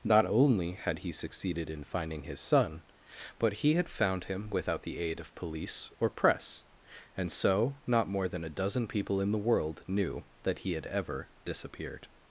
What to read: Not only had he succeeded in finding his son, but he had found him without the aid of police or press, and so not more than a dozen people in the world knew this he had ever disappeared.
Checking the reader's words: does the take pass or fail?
fail